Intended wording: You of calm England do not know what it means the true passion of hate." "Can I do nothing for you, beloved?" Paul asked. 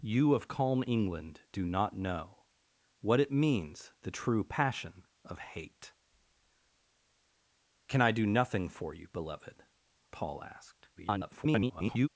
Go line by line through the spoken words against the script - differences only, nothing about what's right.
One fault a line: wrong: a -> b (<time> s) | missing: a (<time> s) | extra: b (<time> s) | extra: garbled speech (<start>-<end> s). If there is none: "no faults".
extra: garbled speech (10.9-12.1 s)